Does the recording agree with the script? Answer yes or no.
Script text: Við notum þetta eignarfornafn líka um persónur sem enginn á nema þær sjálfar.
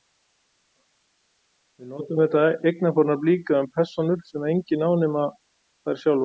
yes